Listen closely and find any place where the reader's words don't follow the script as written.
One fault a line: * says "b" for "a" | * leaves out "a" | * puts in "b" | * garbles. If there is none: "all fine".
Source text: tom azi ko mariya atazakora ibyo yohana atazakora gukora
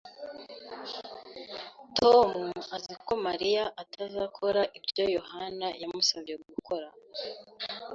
* says "yamusabye" for "atazakora"